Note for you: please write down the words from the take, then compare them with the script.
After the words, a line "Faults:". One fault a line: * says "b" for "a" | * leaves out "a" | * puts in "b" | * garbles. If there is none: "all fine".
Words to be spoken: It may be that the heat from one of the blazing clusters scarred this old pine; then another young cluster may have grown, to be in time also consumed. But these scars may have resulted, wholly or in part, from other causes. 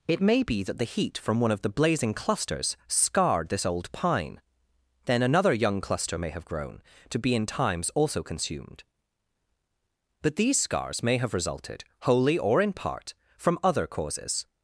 It may be that the heat from one of the blazing clusters scarred this old pine; then another young cluster may have grown, to be in times also consumed. But these scars may have resulted, wholly or in part, from other causes.
Faults:
* says "times" for "time"